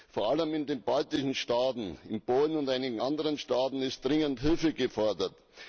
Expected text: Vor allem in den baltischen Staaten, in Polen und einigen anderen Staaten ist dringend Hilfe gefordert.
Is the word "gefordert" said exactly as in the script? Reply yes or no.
yes